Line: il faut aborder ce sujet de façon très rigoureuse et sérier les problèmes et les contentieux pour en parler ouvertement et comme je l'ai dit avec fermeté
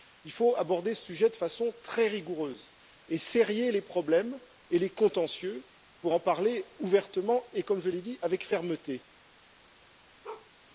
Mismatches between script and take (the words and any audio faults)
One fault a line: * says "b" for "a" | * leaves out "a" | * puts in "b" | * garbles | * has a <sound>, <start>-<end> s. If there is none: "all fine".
* has a bark, 10.2-10.5 s